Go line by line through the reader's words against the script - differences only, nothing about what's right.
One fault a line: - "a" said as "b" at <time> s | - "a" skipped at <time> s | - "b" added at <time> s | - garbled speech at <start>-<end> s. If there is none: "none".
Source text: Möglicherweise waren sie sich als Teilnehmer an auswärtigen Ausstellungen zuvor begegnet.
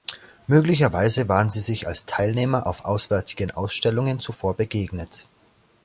- "an" said as "auf" at 2.7 s